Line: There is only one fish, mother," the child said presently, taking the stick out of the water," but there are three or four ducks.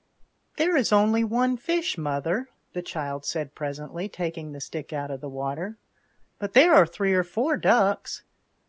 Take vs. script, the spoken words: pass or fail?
pass